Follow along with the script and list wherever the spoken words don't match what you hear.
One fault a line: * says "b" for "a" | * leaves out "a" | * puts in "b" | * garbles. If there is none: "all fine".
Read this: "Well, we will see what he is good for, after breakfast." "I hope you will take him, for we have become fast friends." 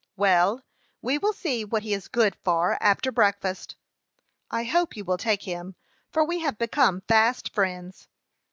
all fine